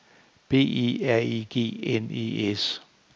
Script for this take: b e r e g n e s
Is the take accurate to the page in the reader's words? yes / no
yes